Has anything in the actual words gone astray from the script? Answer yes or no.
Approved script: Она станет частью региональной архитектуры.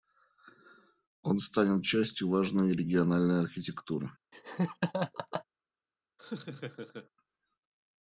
yes